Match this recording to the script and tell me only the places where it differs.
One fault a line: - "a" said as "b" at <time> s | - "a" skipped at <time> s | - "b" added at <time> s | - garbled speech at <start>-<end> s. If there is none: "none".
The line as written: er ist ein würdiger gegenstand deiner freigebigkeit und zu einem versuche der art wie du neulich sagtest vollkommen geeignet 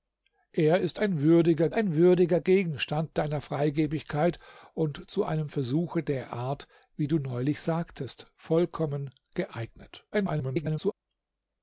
- "ein würdiger" added at 1.7 s
- garbled speech at 10.1-10.9 s